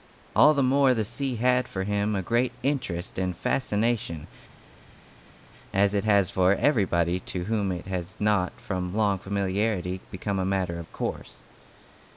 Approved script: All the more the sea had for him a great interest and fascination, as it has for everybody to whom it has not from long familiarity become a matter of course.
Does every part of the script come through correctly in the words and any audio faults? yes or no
yes